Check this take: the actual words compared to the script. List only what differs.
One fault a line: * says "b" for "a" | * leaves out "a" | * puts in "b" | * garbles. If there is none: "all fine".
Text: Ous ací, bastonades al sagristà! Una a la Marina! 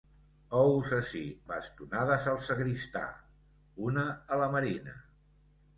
all fine